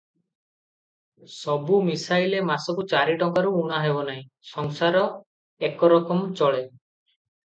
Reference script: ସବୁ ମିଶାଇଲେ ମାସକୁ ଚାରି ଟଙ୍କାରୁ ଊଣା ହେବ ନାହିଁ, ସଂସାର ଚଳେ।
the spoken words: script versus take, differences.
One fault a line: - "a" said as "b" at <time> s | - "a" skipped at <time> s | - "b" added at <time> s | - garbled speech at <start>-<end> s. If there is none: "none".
- "ଏକରକମ" added at 5.6 s